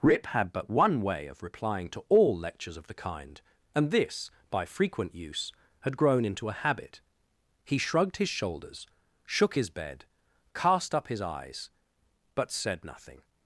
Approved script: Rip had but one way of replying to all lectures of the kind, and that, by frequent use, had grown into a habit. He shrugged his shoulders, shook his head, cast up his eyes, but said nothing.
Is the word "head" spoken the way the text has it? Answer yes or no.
no